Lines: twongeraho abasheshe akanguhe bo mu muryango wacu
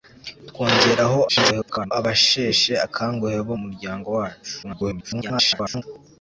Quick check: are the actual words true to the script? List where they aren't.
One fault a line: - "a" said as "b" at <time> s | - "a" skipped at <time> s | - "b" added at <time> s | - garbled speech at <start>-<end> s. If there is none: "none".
- garbled speech at 1.3-1.9 s
- "mu" skipped at 3.5 s
- garbled speech at 4.6-5.8 s